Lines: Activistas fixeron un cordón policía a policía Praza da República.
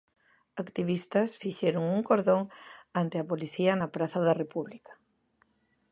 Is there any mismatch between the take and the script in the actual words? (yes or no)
yes